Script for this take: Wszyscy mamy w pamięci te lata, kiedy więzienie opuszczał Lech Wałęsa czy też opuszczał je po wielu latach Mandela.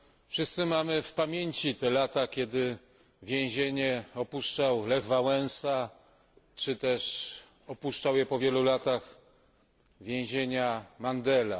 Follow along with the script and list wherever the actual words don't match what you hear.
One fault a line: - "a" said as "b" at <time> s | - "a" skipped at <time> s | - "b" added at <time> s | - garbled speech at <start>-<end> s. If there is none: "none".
none